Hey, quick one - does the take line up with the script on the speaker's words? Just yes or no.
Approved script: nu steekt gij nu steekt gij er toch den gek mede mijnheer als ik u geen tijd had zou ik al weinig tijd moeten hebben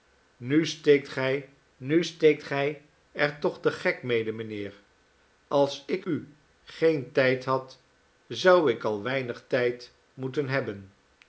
yes